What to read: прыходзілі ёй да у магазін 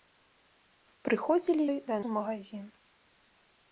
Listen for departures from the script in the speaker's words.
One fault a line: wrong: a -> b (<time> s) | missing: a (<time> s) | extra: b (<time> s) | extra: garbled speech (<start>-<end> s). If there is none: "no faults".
no faults